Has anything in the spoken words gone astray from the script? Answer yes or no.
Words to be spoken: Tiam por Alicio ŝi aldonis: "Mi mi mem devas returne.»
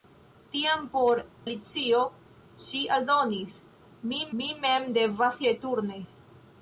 no